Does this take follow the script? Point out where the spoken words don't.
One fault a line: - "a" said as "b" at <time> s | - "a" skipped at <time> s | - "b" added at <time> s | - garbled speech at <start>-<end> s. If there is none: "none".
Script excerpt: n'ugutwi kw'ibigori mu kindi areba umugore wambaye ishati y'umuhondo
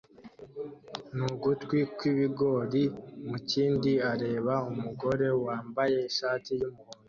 none